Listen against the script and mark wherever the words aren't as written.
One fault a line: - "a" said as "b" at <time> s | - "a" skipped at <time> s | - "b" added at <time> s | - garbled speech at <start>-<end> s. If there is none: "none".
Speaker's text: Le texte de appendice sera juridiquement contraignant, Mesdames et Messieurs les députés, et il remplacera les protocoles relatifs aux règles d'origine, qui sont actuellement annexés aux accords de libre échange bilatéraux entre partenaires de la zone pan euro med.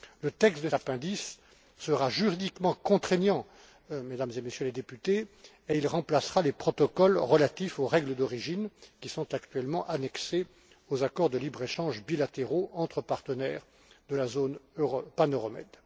none